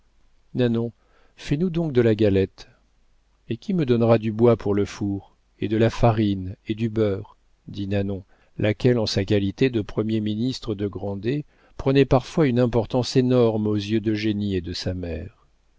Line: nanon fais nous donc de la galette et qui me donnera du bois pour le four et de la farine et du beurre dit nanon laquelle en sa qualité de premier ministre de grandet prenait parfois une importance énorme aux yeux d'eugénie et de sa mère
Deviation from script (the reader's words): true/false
false